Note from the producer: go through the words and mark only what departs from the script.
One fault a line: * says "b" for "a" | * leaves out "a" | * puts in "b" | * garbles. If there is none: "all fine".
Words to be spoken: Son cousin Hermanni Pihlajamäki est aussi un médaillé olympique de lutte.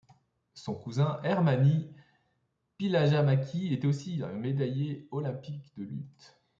all fine